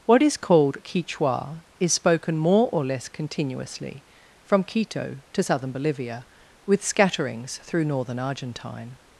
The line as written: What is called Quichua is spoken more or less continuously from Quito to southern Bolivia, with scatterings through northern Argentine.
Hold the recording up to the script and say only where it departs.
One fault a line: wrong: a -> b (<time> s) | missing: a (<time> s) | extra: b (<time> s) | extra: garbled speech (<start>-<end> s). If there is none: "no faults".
no faults